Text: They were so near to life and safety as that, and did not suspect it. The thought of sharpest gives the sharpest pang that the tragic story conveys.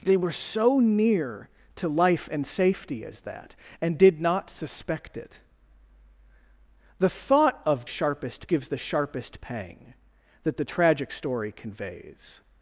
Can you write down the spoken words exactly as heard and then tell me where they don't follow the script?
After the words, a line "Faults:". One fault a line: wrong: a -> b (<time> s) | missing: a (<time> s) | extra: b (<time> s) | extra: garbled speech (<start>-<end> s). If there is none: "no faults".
They were so near to life and safety as that, and did not suspect it. The thought of sharpest gives the sharpest pang that the tragic story conveys.
Faults:
no faults